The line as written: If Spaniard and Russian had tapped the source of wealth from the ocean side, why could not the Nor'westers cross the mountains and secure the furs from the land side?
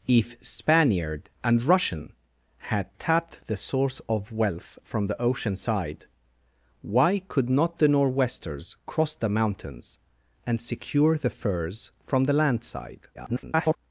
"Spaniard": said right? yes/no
yes